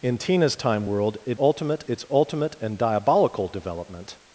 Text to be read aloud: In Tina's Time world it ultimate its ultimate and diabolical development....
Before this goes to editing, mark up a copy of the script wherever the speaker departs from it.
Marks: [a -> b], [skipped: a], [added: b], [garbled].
In Tina's Time world it ultimate its ultimate and diabolical development....